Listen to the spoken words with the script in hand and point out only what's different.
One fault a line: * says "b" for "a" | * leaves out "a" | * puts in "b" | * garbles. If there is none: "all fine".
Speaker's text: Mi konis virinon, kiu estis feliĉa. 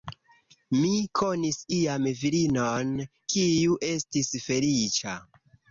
* puts in "iam"